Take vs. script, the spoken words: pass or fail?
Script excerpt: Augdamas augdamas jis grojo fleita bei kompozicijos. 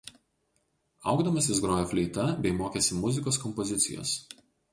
fail